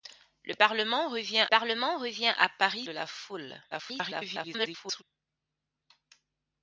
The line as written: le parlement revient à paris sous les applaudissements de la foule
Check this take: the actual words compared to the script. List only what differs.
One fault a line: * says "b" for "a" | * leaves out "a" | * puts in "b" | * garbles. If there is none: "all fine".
* puts in "parlement revient"
* leaves out "sous les applaudissements"
* garbles